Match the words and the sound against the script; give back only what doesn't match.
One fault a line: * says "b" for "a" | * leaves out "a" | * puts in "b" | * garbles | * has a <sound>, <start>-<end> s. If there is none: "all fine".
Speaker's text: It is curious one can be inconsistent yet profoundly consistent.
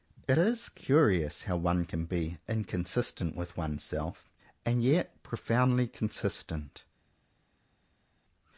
* puts in "how"
* puts in "with oneself and"